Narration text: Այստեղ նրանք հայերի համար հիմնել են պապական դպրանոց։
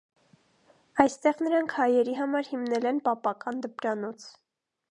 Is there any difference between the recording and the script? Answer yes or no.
no